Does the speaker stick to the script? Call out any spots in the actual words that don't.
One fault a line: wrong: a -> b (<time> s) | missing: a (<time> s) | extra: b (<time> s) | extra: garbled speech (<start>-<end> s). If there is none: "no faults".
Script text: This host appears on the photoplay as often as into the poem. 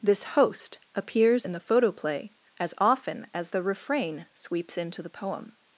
wrong: on -> in (1.4 s)
extra: the refrain sweeps (3.5 s)